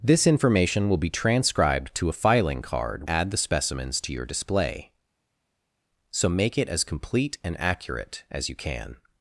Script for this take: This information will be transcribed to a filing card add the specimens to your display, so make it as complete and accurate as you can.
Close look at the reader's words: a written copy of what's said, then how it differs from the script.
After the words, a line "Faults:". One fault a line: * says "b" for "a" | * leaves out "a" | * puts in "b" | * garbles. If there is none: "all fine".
This information will be transcribed to a filing card add the specimens to your display, so make it as complete and accurate as you can.
Faults:
all fine